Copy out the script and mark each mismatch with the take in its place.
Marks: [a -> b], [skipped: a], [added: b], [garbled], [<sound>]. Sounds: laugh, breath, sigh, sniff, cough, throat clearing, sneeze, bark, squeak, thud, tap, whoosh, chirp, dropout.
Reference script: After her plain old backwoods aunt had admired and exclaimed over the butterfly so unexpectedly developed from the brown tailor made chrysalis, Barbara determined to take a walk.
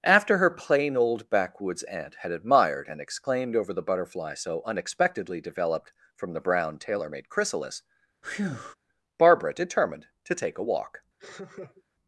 After her plain old backwoods aunt had admired and exclaimed over the butterfly so unexpectedly developed from the brown tailor made chrysalis, [breath] Barbara determined to take a walk. [laugh]